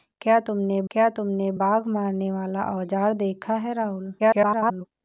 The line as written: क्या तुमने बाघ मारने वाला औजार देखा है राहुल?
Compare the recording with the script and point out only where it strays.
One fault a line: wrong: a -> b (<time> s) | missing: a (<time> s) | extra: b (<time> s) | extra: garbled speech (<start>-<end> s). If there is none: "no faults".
extra: क्या तुमने (0.9 s)
extra: garbled speech (4.2-4.9 s)